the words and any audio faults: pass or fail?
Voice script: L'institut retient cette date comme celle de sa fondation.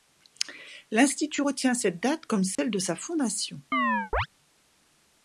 fail